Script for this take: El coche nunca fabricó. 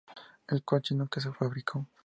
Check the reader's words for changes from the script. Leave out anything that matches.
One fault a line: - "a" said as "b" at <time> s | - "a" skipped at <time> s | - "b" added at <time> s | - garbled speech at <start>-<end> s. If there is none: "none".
- "se" added at 1.2 s